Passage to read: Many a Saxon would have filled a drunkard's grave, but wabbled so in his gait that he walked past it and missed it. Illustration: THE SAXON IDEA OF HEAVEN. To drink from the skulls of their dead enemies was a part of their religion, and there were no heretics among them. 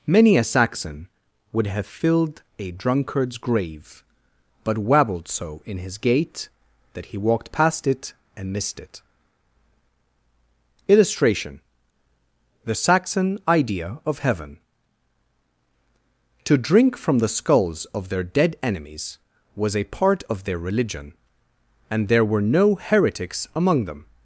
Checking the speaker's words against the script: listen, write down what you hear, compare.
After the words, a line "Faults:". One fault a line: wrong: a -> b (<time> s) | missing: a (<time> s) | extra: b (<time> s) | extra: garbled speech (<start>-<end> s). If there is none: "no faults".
Many a Saxon would have filled a drunkard's grave, but wabbled so in his gait that he walked past it and missed it. Illustration: THE SAXON IDEA OF HEAVEN. To drink from the skulls of their dead enemies was a part of their religion, and there were no heretics among them.
Faults:
no faults